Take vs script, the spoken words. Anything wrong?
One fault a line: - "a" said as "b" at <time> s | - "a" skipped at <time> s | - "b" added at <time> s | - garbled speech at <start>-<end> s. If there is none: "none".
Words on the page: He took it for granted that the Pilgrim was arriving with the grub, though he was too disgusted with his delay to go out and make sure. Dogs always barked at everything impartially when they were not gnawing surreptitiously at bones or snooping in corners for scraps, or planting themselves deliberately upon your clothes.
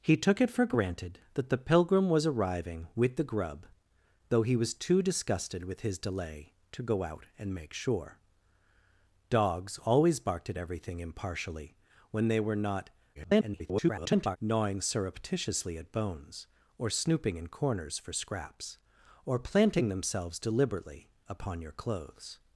- garbled speech at 13.1-14.4 s